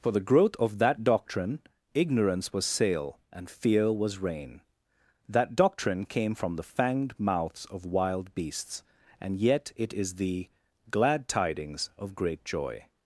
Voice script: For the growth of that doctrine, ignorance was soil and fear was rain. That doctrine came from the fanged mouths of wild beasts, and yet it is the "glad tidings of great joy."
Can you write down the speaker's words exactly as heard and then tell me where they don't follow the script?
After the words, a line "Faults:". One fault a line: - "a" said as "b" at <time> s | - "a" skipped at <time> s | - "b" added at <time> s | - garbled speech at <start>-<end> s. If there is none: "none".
For the growth of that doctrine, ignorance was sail and fear was rain. That doctrine came from the fanged mouths of wild beasts, and yet it is the "glad tidings of great joy."
Faults:
- "soil" said as "sail" at 2.6 s